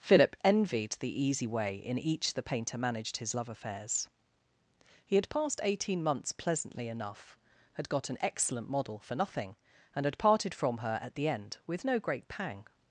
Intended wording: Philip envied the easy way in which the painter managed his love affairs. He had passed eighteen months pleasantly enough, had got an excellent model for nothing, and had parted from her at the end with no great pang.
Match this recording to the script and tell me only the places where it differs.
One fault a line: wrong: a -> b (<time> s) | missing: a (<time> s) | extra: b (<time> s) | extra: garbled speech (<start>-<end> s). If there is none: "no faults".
wrong: which -> each (2.0 s)